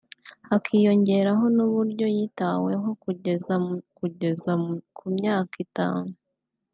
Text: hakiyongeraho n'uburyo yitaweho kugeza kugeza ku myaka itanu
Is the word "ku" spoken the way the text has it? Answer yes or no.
yes